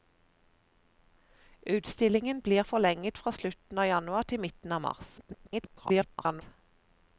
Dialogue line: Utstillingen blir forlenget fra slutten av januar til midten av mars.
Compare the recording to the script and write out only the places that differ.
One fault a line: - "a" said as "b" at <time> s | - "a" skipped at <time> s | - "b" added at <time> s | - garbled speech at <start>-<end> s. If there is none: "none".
- garbled speech at 5.2-6.4 s